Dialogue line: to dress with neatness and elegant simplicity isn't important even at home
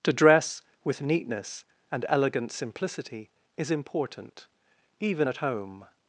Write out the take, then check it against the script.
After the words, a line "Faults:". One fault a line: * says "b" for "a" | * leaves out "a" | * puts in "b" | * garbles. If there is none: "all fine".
to dress with neatness and elegant simplicity is important even at home
Faults:
* says "is" for "isn't"